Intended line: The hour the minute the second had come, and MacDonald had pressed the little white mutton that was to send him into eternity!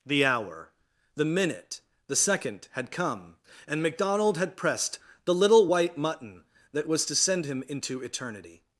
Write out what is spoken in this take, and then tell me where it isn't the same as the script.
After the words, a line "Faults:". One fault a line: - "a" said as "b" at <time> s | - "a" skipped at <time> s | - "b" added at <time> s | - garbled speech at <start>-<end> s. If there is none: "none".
The hour the minute the second had come, and MacDonald had pressed the little white mutton that was to send him into eternity!
Faults:
none